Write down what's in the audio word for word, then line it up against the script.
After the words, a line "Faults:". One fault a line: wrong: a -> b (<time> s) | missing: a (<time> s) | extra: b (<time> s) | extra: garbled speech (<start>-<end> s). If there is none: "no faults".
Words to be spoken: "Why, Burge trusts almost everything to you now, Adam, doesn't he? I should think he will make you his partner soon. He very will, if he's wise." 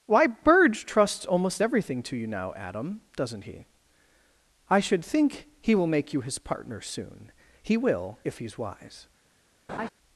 "Why, Burge trusts almost everything to you now, Adam, doesn't he? I should think he will make you his partner soon. He will, if he's wise."
Faults:
missing: very (7.8 s)